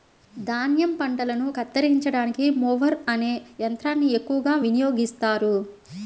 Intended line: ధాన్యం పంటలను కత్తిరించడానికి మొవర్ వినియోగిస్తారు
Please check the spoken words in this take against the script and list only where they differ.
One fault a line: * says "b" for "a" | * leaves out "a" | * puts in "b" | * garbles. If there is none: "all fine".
* puts in "అనే యంత్రాన్ని ఎక్కువగా"